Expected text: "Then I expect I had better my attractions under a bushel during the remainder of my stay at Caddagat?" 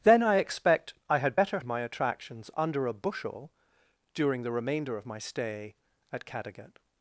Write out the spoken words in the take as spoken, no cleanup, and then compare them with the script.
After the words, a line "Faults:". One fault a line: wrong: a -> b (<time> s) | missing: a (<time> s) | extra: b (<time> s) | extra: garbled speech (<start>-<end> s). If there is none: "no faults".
"Then I expect I had better my attractions under a bushel during the remainder of my stay at Caddagat?"
Faults:
no faults